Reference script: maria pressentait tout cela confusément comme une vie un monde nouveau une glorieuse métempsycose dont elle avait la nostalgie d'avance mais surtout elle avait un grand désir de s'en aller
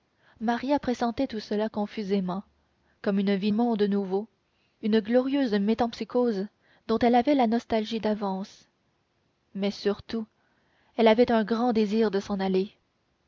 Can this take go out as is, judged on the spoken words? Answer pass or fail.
pass